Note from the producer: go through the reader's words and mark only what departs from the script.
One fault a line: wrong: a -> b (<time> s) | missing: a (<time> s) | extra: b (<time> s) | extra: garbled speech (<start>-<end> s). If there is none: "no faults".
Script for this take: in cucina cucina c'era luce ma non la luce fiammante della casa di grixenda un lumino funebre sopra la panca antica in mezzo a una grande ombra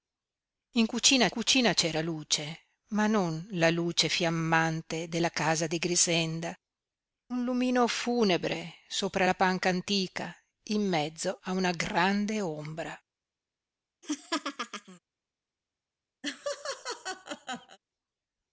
no faults